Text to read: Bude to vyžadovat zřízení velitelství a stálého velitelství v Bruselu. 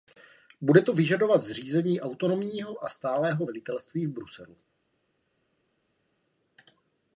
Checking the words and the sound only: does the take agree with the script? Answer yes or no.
no